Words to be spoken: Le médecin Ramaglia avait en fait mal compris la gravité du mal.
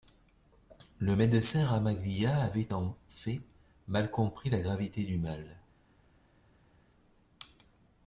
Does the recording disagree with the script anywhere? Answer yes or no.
no